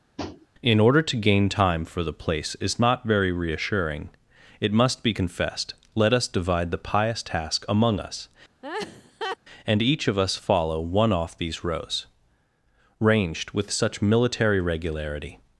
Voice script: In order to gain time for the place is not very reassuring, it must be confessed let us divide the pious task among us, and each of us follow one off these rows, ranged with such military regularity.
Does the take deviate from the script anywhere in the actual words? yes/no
no